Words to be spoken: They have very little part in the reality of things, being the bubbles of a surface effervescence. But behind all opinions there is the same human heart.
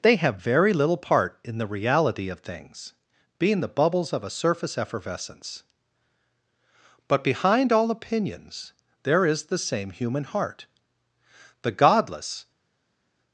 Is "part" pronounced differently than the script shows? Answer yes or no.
no